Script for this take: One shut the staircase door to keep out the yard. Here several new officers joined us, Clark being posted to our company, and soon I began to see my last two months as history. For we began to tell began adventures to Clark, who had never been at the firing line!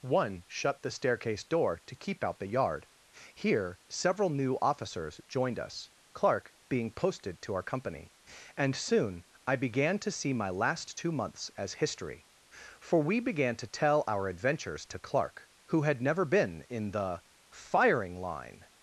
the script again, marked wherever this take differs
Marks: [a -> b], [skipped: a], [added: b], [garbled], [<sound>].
One shut the staircase door to keep out the yard. Here several new officers joined us, Clark being posted to our company, and soon I began to see my last two months as history. For we began to tell [began -> our] adventures to Clark, who had never been [at -> in] the firing line!